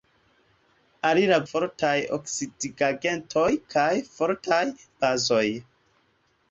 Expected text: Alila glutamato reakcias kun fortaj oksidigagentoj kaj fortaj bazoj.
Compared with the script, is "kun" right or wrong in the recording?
wrong